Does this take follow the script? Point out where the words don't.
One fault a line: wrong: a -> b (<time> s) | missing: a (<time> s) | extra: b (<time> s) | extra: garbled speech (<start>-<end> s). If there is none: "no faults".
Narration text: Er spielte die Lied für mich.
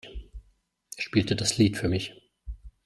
wrong: die -> das (1.4 s)